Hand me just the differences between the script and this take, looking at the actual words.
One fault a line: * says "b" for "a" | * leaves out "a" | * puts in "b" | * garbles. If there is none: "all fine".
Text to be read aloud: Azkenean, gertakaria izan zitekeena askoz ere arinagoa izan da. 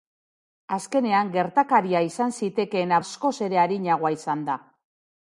all fine